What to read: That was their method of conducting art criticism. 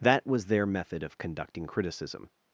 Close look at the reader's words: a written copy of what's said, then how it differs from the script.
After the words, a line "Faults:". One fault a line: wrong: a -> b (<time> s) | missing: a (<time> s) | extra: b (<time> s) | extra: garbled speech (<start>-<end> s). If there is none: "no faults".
That was their method of conducting criticism.
Faults:
missing: art (1.7 s)